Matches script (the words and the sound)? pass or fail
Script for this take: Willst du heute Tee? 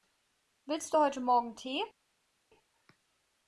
fail